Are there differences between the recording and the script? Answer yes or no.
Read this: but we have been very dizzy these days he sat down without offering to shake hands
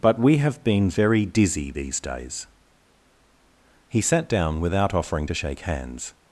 no